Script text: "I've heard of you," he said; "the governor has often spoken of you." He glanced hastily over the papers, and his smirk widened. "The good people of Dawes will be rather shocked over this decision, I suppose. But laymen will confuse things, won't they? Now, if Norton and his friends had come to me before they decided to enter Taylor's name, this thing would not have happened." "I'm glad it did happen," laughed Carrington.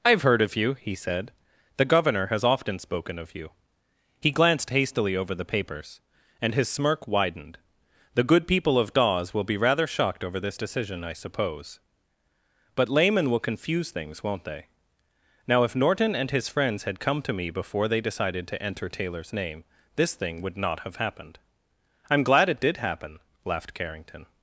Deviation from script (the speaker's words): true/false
false